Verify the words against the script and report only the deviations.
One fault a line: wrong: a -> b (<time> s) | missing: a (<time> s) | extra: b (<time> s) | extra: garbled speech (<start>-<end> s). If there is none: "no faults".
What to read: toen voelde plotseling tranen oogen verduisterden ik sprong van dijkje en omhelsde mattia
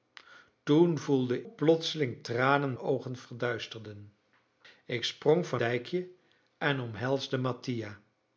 no faults